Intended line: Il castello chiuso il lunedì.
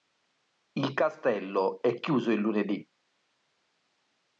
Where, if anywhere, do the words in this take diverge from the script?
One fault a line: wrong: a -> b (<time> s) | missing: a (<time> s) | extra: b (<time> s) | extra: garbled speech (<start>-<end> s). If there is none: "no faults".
extra: è (1.8 s)